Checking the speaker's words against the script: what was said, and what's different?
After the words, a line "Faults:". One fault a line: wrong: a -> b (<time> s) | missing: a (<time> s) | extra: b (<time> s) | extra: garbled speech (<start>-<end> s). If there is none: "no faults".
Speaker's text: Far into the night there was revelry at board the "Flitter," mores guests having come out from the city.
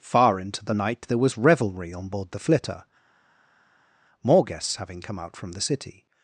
Far into the night there was revelry on board the "Flitter," more guests having come out from the city.
Faults:
wrong: at -> on (1.9 s)
wrong: mores -> more (4.2 s)